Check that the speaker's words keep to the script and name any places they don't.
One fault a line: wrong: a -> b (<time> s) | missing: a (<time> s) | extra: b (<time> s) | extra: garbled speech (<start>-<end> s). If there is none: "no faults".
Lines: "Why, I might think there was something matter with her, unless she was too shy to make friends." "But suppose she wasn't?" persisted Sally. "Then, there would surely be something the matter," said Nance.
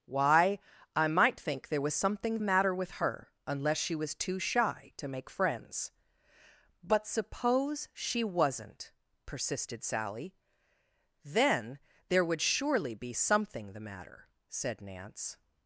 no faults